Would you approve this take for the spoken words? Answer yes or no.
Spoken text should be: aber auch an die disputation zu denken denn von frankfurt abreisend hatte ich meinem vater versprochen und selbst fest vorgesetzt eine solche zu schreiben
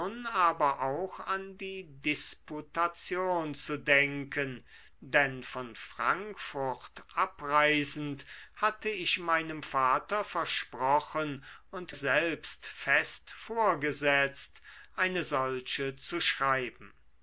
yes